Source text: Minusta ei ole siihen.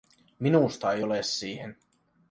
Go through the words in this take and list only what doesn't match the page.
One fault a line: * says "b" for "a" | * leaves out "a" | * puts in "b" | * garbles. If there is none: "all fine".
all fine